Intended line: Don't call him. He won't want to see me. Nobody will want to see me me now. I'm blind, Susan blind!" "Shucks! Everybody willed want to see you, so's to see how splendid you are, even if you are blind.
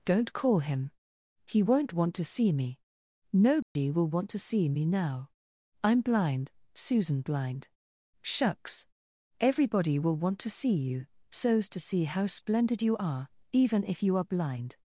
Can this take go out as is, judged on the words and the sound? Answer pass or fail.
fail